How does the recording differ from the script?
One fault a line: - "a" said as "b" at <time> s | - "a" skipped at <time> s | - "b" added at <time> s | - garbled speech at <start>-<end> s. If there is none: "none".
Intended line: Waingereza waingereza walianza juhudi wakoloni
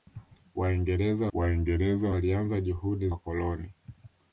none